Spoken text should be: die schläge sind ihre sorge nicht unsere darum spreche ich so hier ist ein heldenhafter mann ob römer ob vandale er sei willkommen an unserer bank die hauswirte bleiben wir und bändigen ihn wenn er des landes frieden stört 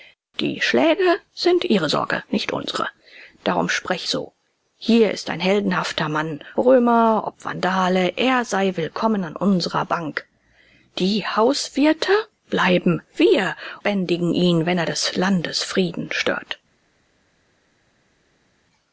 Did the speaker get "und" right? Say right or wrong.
wrong